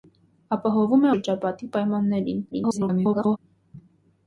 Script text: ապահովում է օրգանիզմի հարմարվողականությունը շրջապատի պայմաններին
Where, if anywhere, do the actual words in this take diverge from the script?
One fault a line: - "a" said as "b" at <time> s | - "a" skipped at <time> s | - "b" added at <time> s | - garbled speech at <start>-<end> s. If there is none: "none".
- "օրգանիզմի հարմարվողականությունը" skipped at 1.1 s
- garbled speech at 2.5-3.4 s